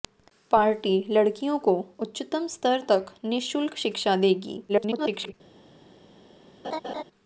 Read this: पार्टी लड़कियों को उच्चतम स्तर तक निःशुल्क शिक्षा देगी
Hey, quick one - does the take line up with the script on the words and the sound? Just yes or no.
no